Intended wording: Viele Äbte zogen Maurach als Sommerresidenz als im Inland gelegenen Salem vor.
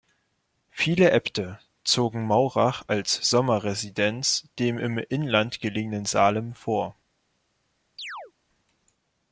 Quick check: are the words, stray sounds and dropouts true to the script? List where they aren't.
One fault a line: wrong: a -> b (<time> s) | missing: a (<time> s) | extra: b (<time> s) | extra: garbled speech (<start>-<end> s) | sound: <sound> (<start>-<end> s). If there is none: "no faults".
wrong: als -> dem (4.6 s)
sound: chirp (8.0-8.3 s)